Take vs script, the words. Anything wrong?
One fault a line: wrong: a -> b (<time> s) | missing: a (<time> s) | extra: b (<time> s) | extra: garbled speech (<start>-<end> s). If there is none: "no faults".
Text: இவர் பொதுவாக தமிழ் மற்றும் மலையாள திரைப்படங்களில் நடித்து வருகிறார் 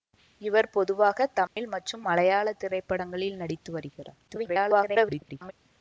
extra: garbled speech (4.3-5.5 s)